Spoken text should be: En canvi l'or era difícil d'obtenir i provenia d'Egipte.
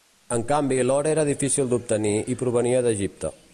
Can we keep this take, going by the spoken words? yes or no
yes